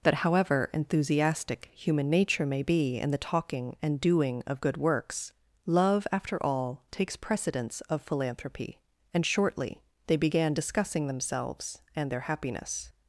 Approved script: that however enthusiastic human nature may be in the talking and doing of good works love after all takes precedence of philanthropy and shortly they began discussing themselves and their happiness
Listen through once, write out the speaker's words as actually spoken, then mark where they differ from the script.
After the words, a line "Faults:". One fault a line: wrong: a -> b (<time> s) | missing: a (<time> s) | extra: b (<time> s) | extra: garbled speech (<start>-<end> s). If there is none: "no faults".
that however enthusiastic human nature may be in the talking and doing of good works love after all takes precedence of philanthropy and shortly they began discussing themselves and their happiness
Faults:
no faults